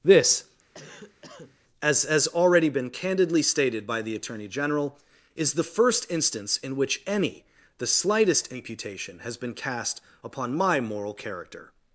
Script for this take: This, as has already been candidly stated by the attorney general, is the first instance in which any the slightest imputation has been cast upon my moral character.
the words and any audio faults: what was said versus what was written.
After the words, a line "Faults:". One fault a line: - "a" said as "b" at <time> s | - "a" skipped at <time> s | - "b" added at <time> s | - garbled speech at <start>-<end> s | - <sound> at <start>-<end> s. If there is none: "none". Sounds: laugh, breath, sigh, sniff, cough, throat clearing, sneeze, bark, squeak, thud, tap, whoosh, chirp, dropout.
This, as has already been candidly stated by the attorney general, is the first instance in which any the slightest imputation has been cast upon my moral character.
Faults:
- cough at 0.7-1.6 s